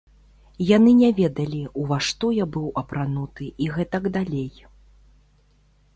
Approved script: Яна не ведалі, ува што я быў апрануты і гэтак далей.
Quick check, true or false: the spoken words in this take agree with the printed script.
false